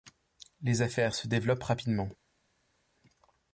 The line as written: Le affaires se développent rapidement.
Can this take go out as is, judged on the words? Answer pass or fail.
fail